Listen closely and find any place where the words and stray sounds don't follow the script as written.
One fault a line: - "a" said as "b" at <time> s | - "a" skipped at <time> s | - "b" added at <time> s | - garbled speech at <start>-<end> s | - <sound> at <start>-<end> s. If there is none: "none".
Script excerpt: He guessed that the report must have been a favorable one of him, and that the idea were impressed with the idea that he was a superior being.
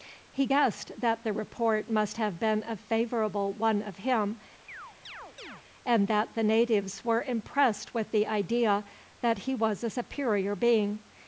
- chirp at 4.7-5.6 s
- "idea" said as "natives" at 6.4 s